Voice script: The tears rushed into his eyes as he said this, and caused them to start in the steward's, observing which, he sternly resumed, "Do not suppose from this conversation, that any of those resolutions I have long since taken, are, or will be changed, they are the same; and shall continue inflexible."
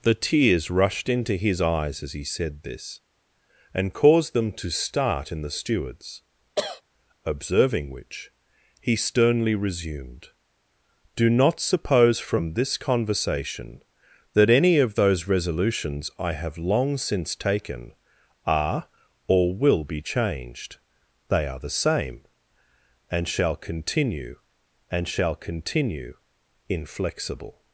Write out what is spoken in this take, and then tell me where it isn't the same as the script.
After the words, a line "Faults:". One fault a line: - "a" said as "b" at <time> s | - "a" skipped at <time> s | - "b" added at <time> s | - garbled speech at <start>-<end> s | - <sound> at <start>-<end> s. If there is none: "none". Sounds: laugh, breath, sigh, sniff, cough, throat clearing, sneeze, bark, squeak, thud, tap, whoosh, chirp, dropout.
The tears rushed into his eyes as he said this, and caused them to start in the steward's, observing which, he sternly resumed, "Do not suppose from this conversation, that any of those resolutions I have long since taken, are, or will be changed, they are the same; and shall continue and shall continue inflexible."
Faults:
- cough at 6.6-6.8 s
- "and shall continue" added at 24.9 s